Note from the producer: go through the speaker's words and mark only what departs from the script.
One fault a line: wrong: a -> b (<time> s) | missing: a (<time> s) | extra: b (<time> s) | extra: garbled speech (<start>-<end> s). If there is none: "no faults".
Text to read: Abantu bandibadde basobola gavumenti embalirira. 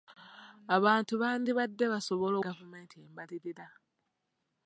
no faults